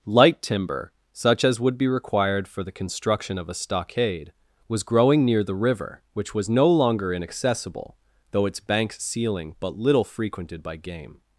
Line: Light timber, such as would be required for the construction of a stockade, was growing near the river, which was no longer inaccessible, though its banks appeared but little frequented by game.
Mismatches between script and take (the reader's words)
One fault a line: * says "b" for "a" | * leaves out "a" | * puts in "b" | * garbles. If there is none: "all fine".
* says "ceiling" for "appeared"